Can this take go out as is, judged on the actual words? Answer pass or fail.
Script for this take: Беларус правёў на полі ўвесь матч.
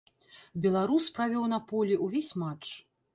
pass